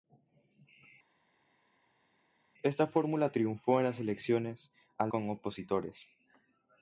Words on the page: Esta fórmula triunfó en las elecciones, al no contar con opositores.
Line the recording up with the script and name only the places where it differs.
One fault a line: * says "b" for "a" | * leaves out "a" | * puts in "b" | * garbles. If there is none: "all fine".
* leaves out "no contar"